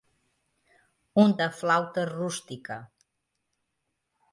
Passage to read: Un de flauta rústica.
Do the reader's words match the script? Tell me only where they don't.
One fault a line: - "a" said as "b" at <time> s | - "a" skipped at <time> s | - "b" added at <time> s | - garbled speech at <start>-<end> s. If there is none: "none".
none